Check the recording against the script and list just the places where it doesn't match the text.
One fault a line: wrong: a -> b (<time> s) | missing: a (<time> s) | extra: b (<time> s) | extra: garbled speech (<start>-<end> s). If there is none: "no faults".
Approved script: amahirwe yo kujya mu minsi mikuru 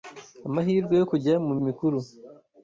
missing: minsi (1.5 s)